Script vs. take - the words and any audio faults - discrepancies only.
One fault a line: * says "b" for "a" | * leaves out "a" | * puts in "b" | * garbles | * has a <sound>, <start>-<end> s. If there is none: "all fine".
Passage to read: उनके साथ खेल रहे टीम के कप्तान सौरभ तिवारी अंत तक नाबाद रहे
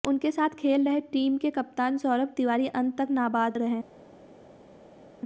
all fine